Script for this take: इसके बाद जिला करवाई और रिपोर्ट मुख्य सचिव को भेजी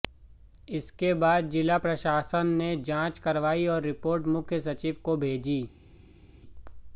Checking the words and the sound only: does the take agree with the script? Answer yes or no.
no